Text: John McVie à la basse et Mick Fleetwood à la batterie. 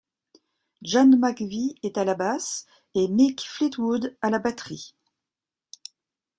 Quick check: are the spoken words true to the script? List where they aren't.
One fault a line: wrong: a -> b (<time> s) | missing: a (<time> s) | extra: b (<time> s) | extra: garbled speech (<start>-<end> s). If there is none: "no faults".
extra: est (1.8 s)